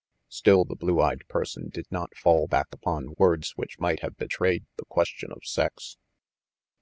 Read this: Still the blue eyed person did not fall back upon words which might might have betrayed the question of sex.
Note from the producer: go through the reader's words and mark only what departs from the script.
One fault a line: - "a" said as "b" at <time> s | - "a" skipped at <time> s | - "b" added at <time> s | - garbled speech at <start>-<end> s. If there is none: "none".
- "might" skipped at 4.0 s